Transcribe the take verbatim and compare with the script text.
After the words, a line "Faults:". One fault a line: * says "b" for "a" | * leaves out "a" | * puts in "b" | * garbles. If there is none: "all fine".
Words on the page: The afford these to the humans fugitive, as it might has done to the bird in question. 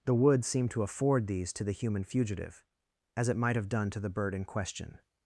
The wood seemed to afford these to the human fugitive, as it might have done to the bird in question.
Faults:
* puts in "wood seemed to"
* says "human" for "humans"
* says "have" for "has"